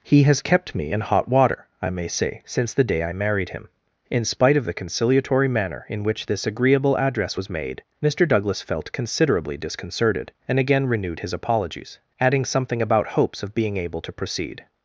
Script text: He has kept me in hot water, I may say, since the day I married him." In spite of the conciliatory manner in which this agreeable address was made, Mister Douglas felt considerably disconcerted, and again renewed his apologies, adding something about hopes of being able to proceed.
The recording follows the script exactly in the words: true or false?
true